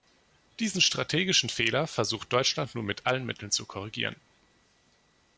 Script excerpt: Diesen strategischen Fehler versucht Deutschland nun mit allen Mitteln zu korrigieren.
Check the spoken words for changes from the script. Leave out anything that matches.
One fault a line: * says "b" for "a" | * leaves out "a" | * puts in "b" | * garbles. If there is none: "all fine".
all fine